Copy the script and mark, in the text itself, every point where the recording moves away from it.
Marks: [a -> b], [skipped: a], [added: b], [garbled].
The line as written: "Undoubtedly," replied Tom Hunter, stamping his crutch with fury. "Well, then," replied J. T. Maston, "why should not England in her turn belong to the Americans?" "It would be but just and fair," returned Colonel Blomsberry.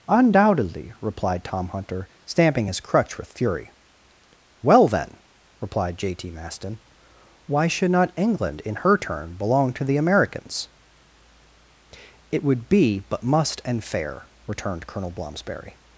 "Undoubtedly," replied Tom Hunter, stamping his crutch with fury. "Well, then," replied J. T. Maston, "why should not England in her turn belong to the Americans?" "It would be but [just -> must] and fair," returned Colonel Blomsberry.